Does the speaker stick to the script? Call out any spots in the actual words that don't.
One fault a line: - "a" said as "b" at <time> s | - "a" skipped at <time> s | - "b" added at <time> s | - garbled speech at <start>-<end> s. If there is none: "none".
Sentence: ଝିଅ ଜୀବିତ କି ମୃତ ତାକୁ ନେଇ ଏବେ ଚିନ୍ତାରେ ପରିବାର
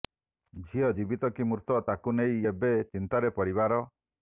none